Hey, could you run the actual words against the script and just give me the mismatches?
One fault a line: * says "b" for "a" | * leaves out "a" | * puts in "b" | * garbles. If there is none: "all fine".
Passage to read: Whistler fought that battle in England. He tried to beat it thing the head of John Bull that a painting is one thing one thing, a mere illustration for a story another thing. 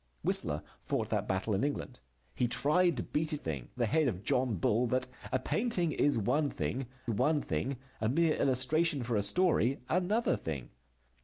all fine